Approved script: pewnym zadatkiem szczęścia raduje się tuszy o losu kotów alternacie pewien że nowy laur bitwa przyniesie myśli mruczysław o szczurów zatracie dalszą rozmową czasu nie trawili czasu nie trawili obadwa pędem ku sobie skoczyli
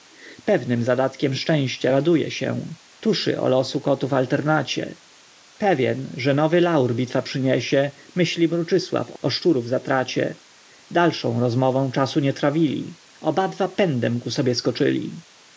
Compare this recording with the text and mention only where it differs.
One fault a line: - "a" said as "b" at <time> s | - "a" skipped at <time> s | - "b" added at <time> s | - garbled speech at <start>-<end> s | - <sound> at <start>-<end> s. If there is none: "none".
- "czasu nie trawili" skipped at 13.0 s